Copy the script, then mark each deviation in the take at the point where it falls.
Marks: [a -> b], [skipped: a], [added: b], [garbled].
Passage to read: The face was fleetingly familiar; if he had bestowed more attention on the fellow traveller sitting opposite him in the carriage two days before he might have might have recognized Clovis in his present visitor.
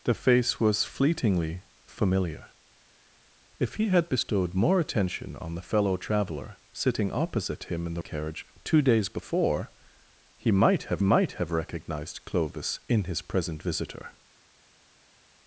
The face was fleetingly familiar; if he had bestowed more attention on the fellow traveller sitting opposite him in the carriage two days before he might have might have recognized Clovis in his present visitor.